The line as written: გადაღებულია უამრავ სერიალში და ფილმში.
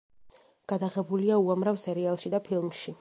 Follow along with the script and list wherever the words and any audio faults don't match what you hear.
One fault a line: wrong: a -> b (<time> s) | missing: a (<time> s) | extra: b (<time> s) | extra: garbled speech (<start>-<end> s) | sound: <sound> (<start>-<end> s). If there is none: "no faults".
no faults